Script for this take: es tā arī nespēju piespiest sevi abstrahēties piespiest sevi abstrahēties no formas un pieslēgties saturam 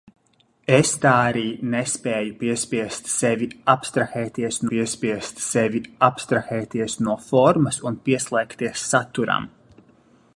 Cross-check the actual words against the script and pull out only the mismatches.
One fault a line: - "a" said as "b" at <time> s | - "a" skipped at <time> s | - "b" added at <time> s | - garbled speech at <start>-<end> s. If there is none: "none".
none